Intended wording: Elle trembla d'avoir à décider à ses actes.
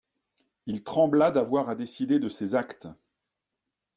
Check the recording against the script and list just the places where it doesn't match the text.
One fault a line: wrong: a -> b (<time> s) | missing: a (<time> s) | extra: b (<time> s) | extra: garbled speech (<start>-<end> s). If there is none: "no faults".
wrong: Elle -> Il (0.7 s)
wrong: à -> de (2.2 s)